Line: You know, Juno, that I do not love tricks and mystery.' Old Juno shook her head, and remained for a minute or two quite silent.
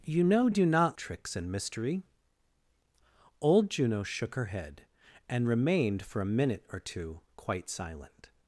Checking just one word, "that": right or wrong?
wrong